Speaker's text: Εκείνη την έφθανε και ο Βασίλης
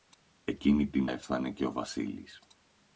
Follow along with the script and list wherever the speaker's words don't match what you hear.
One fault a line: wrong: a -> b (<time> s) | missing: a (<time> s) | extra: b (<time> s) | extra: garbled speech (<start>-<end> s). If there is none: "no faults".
no faults